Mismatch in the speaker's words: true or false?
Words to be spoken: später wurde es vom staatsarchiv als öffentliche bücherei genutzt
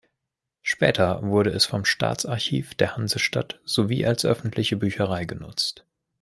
true